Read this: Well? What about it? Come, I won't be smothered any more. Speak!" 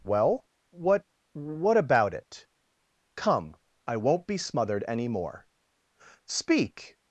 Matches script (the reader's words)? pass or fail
fail